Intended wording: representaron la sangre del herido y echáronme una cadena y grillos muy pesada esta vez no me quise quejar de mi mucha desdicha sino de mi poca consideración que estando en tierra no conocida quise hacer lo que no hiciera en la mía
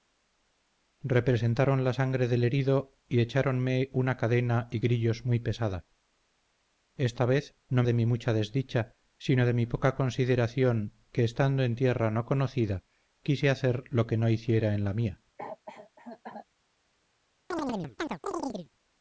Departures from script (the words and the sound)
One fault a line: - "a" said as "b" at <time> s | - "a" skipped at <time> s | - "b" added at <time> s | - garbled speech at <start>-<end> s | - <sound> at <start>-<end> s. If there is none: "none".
- "me quise quejar" skipped at 7.8 s
- cough at 15.4-16.5 s
- chirp at 17.5-18.7 s